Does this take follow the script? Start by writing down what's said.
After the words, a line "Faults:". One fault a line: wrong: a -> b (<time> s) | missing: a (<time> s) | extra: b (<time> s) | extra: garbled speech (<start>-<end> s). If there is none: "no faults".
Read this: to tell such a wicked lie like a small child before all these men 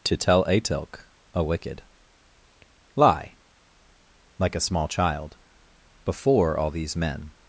to tell atilk a wicked lie like a small child before all these men
Faults:
wrong: such -> atilk (0.5 s)